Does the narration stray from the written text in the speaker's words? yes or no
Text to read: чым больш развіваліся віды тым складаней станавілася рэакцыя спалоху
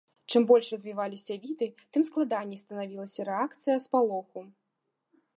no